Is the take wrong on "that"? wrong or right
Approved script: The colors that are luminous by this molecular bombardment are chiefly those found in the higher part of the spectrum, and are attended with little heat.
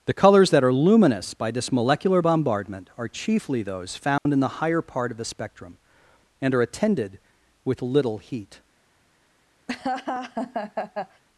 right